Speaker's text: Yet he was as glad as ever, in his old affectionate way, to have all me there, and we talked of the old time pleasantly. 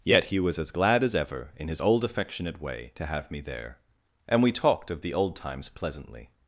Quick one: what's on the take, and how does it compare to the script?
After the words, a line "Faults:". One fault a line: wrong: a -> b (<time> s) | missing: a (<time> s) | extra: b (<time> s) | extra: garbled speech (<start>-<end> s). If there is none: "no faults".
Yet he was as glad as ever, in his old affectionate way, to have me there, and we talked of the old times pleasantly.
Faults:
missing: all (3.3 s)
wrong: time -> times (5.3 s)